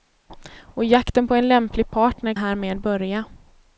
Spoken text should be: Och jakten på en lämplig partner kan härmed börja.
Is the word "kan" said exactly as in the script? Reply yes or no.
no